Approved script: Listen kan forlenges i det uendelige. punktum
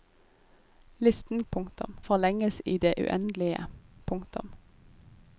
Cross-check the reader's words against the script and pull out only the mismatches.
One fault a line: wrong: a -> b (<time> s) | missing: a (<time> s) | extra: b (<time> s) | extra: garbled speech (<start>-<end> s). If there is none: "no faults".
wrong: kan -> punktum (1.5 s)